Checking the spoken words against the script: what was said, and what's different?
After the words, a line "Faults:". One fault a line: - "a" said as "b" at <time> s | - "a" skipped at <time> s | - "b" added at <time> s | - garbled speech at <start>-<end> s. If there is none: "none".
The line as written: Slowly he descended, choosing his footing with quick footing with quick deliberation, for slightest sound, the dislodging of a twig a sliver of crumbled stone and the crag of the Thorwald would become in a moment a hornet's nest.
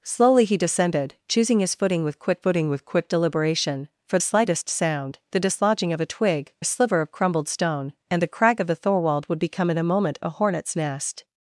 Slowly he descended, choosing his footing with quick footing with quick deliberation, for slightest sound, the dislodging of a twig a sliver of crumbled stone and the crag of the Thorwald would become in a moment a hornet's nest.
Faults:
none